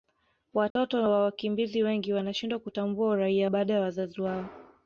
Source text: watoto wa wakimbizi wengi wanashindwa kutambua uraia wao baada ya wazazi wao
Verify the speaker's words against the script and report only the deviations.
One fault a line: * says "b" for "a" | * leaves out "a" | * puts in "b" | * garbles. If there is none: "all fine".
* leaves out "wao"